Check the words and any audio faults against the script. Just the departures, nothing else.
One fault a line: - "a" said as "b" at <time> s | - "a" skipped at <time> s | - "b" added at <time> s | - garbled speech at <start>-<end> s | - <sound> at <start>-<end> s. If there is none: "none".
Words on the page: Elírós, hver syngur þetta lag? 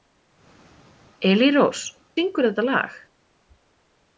- "hver" skipped at 1.8 s